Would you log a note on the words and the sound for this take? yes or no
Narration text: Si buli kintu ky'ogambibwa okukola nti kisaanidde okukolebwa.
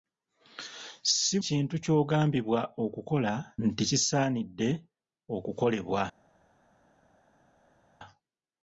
yes